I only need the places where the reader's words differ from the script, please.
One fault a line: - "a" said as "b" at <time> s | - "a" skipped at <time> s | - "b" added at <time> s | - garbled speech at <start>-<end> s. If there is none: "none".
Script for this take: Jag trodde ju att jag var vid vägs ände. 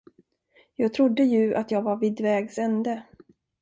none